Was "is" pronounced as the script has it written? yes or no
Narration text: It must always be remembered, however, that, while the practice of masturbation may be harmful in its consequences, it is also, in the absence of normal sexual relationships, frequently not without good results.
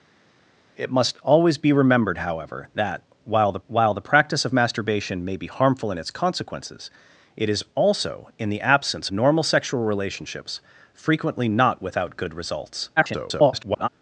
yes